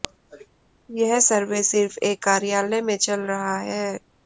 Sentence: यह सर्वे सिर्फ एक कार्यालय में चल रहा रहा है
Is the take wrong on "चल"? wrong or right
right